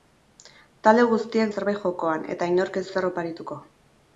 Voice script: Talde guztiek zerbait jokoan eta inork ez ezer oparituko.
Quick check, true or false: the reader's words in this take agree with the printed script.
true